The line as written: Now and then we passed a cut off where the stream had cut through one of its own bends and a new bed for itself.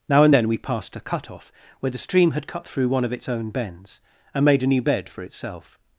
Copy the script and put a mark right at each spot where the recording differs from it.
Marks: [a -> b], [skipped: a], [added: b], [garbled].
Now and then we passed a cut off where the stream had cut through one of its own bends and [added: made] a new bed for itself.